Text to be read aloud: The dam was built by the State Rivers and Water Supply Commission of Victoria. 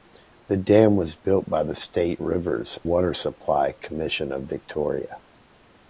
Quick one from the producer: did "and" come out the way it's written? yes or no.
no